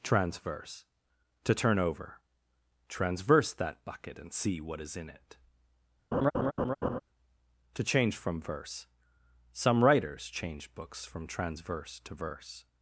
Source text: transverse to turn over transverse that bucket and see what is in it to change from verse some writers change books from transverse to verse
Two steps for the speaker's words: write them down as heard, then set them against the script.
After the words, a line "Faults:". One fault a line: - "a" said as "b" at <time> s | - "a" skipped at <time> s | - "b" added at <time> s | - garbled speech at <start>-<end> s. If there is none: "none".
transverse to turn over transverse that bucket and see what is in it to change from verse some writers change books from transverse to verse
Faults:
none